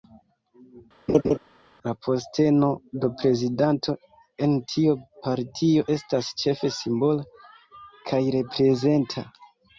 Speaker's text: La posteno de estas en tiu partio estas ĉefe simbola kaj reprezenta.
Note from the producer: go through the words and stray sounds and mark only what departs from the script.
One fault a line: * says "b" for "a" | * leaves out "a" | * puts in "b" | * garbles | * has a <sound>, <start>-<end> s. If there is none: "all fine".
* has a laugh, 1.1-1.4 s
* says "prezidanto" for "estas"